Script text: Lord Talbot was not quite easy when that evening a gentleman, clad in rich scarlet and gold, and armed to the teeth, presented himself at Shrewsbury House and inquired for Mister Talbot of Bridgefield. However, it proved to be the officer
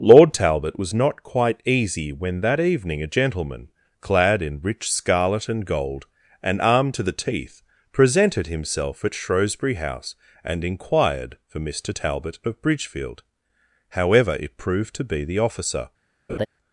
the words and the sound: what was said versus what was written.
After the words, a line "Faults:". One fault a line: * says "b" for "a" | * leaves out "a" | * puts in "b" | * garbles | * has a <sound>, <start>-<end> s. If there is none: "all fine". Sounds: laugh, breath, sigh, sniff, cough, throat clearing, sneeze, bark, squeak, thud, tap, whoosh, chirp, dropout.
Lord Talbot was not quite easy when that evening a gentleman, clad in rich scarlet and gold, and armed to the teeth, presented himself at Shrewsbury House and inquired for Mister Talbot of Bridgefield. However, it proved to be the officer
Faults:
* has a laugh, 16.3-16.5 s